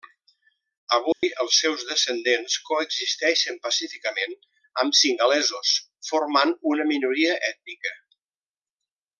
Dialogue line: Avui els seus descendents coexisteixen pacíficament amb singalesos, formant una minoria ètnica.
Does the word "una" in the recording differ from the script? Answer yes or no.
no